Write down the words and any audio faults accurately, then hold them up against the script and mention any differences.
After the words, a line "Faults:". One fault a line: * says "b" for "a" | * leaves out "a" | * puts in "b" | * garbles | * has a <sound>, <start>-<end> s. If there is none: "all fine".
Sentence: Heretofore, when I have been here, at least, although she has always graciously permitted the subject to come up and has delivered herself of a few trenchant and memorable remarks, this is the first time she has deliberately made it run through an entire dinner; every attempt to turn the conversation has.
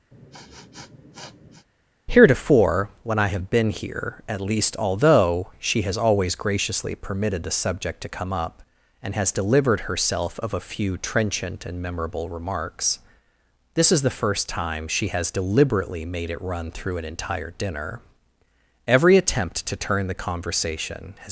Heretofore, when I have been here, at least, although she has always graciously permitted the subject to come up and has delivered herself of a few trenchant and memorable remarks, this is the first time she has deliberately made it run through an entire dinner; every attempt to turn the conversation has.
Faults:
* has a sniff, 0.1-1.7 s